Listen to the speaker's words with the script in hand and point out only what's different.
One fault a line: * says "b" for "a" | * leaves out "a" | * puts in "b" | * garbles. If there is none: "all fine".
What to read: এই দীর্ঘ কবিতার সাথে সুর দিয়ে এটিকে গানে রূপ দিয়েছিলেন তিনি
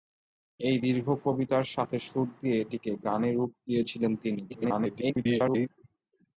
* garbles